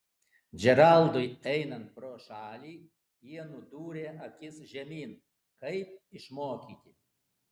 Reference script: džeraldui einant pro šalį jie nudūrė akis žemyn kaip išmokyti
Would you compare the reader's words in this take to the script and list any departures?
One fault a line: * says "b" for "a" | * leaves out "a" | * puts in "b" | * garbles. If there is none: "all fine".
all fine